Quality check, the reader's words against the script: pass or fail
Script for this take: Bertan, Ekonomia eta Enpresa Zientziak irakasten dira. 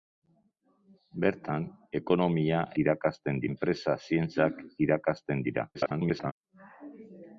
fail